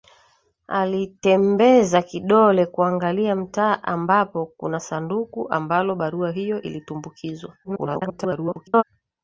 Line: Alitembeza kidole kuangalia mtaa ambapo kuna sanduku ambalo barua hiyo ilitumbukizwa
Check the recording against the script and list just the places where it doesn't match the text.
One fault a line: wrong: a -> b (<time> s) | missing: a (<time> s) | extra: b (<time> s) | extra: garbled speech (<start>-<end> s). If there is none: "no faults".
extra: garbled speech (7.6-8.8 s)